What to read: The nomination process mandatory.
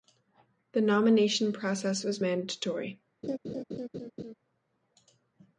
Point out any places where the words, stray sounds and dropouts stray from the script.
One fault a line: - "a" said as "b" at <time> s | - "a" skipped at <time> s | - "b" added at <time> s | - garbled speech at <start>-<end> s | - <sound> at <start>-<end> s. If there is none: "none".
- "was" added at 2.0 s
- laugh at 3.2-4.3 s